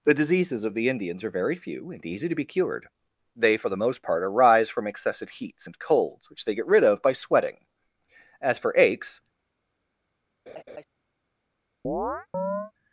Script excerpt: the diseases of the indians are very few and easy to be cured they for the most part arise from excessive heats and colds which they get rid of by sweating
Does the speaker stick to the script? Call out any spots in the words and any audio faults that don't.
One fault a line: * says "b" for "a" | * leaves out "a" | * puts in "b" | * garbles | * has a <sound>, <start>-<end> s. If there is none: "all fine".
* puts in "as for aches"
* has a laugh, 10.5-10.8 s
* has a chirp, 11.8-12.7 s